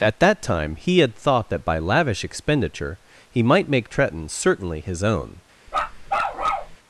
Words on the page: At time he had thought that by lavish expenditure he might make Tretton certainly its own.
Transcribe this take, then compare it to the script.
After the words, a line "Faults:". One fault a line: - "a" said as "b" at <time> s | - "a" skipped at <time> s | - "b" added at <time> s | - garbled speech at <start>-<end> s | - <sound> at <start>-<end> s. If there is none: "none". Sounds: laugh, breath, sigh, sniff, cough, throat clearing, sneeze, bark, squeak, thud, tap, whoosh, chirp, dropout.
At that time he had thought that by lavish expenditure he might make Tretton certainly his own.
Faults:
- "that" added at 0.2 s
- "its" said as "his" at 4.8 s
- bark at 5.7-6.8 s